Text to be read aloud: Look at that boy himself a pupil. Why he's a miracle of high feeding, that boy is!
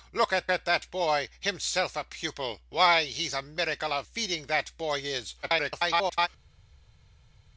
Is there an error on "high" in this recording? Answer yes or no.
yes